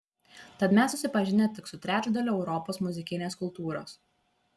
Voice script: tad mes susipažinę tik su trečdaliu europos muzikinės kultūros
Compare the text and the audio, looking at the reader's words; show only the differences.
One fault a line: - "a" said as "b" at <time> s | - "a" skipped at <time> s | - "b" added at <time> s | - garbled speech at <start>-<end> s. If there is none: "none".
none